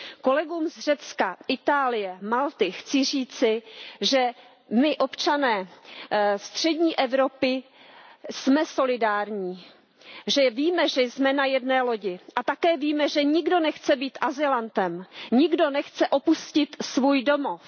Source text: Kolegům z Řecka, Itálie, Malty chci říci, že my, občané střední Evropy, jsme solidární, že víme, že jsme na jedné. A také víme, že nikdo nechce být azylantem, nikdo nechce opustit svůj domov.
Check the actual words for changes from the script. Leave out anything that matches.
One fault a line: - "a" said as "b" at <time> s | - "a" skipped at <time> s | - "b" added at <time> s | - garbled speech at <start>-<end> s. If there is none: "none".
- "lodi" added at 11.8 s